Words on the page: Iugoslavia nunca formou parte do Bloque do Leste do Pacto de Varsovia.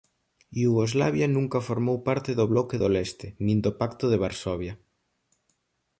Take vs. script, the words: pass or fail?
fail